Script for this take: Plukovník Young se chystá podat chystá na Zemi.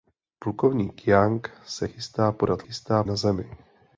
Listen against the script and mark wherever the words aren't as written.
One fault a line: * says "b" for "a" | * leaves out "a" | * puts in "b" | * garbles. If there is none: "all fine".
all fine